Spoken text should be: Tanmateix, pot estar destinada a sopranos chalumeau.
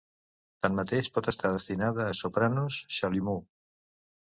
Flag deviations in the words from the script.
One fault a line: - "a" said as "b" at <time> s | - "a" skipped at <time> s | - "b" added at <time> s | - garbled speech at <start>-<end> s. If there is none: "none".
none